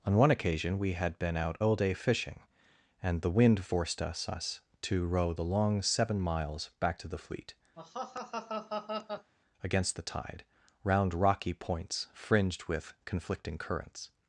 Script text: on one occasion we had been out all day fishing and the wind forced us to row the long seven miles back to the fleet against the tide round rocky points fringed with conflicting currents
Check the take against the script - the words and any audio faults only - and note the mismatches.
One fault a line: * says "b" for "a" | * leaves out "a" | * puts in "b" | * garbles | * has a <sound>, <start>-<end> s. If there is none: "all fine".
* puts in "us"
* has a laugh, 7.8-9.3 s